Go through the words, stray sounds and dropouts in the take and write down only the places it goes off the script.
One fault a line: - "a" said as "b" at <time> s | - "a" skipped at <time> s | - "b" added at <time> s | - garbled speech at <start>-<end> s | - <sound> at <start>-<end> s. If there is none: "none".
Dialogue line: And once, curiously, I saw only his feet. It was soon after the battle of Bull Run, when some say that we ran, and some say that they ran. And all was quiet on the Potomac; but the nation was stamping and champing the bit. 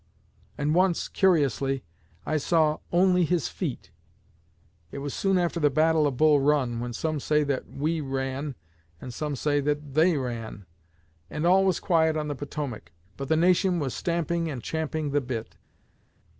none